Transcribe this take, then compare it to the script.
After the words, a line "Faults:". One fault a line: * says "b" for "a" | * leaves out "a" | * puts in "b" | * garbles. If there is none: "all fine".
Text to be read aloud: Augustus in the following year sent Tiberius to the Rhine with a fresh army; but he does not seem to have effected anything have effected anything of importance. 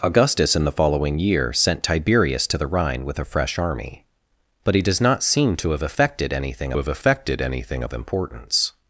Augustus in the following year sent Tiberius to the Rhine with a fresh army; but he does not seem to have effected anything have effected anything of importance.
Faults:
all fine